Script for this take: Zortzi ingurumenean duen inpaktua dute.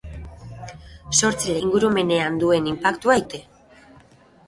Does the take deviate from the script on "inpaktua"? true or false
false